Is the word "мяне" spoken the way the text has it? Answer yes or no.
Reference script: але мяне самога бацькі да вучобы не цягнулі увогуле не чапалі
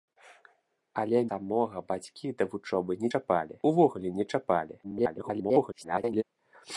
no